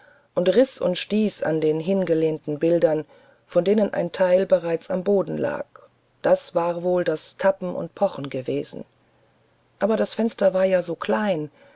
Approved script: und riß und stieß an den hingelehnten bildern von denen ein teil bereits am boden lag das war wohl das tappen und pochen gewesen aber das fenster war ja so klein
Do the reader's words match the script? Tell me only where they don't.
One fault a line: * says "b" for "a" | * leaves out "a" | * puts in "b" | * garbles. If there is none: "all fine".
all fine